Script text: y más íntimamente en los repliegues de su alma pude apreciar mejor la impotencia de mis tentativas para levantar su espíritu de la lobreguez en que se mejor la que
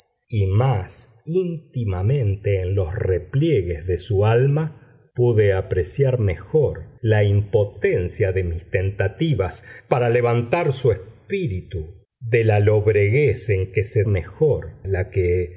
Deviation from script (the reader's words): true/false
false